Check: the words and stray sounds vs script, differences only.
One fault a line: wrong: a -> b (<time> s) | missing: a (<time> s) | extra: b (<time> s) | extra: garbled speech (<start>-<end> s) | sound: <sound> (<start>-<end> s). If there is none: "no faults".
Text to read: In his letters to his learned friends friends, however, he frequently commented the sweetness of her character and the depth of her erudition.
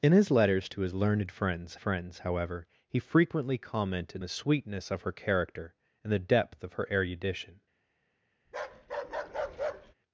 sound: bark (8.5-9.9 s)